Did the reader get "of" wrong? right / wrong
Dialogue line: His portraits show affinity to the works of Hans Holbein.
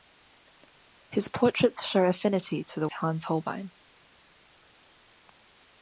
wrong